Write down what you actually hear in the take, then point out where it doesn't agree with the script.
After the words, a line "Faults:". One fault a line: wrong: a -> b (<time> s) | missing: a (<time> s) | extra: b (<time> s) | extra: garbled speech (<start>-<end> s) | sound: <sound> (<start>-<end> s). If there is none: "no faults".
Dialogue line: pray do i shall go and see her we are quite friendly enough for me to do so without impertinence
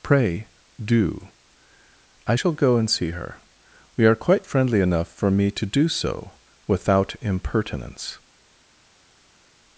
pray do i shall go and see her we are quite friendly enough for me to do so without impertinence
Faults:
no faults